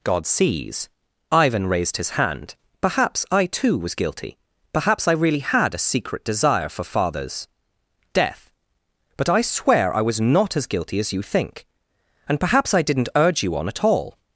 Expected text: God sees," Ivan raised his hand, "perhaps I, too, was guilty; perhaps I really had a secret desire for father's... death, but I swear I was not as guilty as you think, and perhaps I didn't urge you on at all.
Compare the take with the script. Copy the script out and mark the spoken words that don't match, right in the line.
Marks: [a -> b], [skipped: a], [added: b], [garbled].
God sees," Ivan raised his hand, "perhaps I, too, was guilty; perhaps I really had a secret desire for father's... death, but I swear I was not as guilty as you think, and perhaps I didn't urge you on at all.